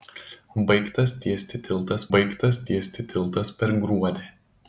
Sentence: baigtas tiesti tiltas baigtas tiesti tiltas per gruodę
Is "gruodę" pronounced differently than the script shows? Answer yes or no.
no